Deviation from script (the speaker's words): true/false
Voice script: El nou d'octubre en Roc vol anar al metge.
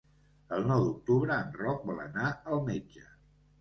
false